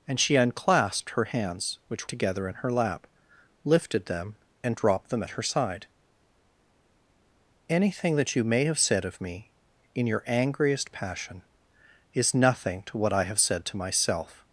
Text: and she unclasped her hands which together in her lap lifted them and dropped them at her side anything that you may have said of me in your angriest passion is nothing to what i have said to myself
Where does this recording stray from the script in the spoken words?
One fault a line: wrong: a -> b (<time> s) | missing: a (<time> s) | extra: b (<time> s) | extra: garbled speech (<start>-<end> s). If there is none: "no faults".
no faults